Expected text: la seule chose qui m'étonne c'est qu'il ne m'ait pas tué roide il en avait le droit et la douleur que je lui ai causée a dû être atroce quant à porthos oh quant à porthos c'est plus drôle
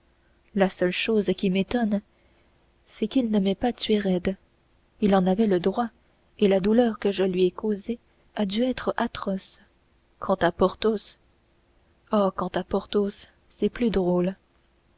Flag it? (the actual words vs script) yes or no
no